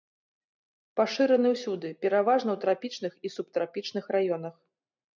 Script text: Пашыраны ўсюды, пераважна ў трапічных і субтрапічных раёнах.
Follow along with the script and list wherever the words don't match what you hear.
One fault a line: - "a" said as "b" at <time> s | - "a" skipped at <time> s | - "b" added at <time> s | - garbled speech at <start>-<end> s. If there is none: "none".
none